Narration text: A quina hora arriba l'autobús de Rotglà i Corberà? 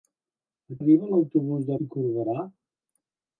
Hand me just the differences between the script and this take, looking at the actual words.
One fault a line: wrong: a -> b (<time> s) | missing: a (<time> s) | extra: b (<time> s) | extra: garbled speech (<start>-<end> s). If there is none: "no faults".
missing: quina hora (0.8 s)
missing: Rotglà (1.8 s)